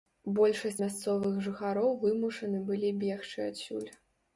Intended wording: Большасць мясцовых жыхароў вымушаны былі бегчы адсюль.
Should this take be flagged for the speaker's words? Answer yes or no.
no